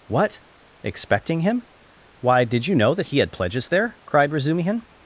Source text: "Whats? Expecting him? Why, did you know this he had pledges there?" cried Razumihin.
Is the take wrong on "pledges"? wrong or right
right